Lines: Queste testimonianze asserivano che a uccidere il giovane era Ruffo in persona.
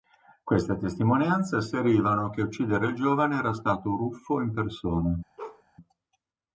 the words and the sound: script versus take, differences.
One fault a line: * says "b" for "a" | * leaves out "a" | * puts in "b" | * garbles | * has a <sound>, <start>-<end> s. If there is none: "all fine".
* puts in "stato"
* has a bark, 5.4-5.6 s